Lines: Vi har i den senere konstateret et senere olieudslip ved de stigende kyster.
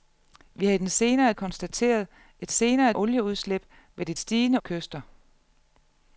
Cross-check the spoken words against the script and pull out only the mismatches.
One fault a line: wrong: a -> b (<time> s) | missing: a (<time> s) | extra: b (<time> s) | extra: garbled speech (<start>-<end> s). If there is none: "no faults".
no faults